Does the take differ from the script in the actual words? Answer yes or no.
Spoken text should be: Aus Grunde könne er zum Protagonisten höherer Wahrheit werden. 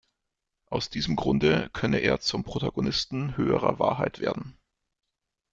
yes